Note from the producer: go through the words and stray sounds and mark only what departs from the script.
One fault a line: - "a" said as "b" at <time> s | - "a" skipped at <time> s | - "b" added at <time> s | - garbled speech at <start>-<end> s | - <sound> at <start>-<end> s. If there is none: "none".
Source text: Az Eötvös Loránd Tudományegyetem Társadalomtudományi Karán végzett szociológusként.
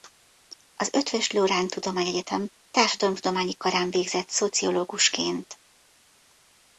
none